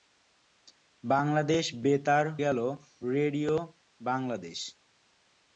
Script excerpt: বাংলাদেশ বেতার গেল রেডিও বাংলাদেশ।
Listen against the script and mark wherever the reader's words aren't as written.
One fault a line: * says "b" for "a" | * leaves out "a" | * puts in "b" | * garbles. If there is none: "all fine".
all fine